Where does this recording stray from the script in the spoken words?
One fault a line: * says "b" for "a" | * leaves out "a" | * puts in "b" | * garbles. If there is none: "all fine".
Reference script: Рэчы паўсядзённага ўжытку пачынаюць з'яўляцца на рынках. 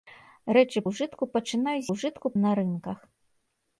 * leaves out "паўсядзённага"
* says "ўжытку" for "з'яўляцца"